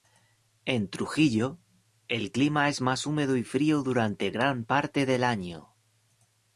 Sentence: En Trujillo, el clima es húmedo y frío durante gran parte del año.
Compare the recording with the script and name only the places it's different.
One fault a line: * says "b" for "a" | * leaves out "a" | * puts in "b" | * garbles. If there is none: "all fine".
* puts in "más"